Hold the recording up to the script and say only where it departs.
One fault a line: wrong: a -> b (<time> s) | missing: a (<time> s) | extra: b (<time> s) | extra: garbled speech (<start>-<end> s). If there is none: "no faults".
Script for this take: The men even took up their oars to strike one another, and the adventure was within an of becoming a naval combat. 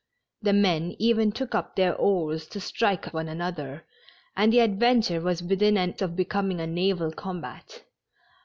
no faults